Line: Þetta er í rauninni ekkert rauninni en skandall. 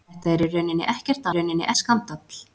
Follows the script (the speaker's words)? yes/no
yes